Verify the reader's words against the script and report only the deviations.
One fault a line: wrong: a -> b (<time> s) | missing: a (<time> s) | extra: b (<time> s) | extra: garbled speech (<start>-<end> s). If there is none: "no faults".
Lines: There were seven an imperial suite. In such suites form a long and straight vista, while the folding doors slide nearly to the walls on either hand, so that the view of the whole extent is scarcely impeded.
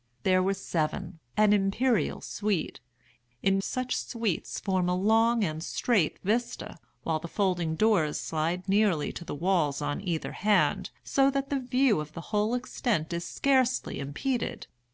no faults